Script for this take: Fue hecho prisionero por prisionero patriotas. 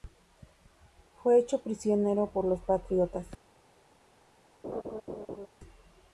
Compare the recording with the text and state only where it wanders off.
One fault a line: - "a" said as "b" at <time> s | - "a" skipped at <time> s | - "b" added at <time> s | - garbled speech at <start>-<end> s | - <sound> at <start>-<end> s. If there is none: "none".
- "prisionero" said as "los" at 2.5 s
- laugh at 4.6-5.5 s